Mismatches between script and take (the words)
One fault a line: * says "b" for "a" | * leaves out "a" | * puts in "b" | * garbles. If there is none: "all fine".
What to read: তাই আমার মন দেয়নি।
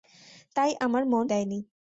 all fine